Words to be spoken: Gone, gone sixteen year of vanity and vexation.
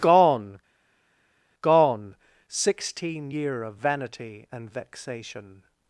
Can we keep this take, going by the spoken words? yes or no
yes